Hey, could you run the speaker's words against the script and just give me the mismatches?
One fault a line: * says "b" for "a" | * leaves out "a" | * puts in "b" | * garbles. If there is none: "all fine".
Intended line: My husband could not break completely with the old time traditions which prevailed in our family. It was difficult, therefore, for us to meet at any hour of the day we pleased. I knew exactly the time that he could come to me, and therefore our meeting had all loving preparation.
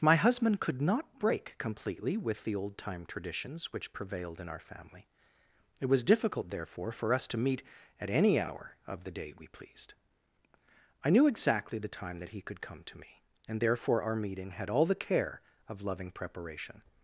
* puts in "the care of"